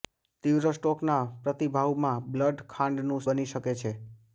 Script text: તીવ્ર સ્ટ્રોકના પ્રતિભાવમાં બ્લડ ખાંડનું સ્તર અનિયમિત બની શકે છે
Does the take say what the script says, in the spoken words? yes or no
no